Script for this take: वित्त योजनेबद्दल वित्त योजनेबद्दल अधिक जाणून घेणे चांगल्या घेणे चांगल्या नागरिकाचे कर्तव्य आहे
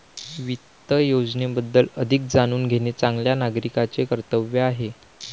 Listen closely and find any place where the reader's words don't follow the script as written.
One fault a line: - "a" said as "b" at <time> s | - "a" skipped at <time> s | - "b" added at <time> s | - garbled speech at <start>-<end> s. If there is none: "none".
- "वित्त योजनेबद्दल" skipped at 1.9 s
- "घेणे चांगल्या" skipped at 3.4 s